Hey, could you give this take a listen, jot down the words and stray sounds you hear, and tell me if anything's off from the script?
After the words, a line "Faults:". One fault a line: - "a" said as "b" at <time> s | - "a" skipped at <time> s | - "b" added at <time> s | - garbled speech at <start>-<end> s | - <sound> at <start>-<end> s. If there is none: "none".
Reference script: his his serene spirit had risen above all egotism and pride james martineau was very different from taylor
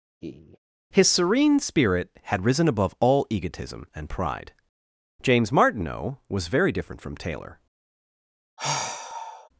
his serene spirit had risen above all egotism and pride james martineau was very different from taylor
Faults:
- laugh at 0.2-0.6 s
- "his" skipped at 1.1 s
- sigh at 8.6-9.5 s